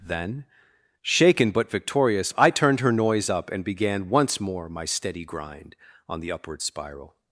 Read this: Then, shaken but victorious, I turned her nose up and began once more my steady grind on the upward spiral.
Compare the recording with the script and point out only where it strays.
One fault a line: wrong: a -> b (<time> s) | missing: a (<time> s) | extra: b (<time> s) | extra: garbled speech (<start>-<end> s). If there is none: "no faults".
wrong: nose -> noise (2.9 s)